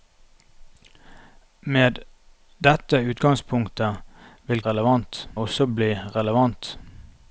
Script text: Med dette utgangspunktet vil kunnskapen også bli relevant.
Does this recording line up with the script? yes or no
no